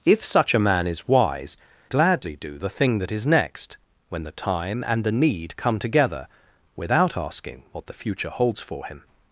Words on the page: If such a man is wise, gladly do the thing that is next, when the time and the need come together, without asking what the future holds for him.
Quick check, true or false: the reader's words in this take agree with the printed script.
true